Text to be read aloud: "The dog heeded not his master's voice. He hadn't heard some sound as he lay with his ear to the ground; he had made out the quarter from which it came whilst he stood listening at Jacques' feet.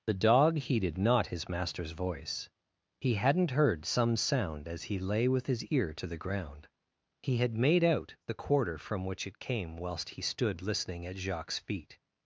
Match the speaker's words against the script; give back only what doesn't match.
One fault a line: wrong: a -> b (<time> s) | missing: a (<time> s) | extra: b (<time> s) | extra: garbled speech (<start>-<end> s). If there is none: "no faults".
no faults